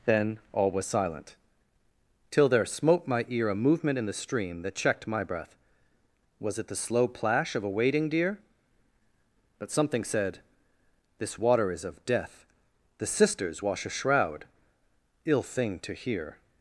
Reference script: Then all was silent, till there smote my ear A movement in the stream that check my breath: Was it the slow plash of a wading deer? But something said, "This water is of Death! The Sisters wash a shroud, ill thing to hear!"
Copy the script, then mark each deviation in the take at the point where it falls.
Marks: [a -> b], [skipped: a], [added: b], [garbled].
Then all was silent, till there smote my ear A movement in the stream that [check -> checked] my breath: Was it the slow plash of a wading deer? But something said, "This water is of Death! The Sisters wash a shroud, ill thing to hear!"